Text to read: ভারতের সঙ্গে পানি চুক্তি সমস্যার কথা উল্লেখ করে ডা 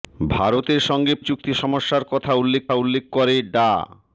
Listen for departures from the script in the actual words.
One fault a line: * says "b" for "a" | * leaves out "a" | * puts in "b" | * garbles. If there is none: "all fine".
* leaves out "পানি"
* puts in "উল্লেখ"